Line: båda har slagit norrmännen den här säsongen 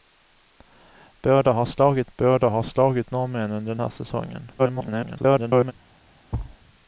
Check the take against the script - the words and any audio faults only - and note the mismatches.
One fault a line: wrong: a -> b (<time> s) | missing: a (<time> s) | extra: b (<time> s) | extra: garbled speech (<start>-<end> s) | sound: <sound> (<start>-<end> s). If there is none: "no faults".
extra: båda har slagit (2.2 s)
extra: garbled speech (4.6-5.7 s)
sound: thud (6.3-6.6 s)